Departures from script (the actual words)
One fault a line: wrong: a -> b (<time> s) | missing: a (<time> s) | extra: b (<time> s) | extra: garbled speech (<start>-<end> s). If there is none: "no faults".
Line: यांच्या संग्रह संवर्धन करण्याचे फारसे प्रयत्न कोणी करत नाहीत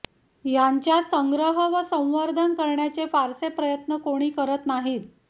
extra: व (1.7 s)